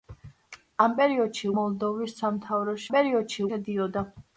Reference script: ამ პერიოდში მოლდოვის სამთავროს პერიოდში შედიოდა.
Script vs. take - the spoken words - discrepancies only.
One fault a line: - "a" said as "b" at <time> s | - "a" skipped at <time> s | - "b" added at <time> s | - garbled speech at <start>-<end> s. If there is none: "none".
none